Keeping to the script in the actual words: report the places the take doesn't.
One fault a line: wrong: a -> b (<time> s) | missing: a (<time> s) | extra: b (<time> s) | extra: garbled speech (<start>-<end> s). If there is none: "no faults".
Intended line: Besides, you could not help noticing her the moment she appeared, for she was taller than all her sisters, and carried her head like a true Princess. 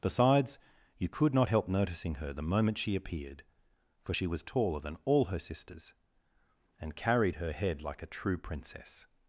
no faults